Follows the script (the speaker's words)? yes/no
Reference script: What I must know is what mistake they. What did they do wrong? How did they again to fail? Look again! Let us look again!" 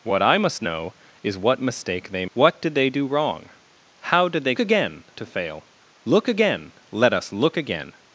yes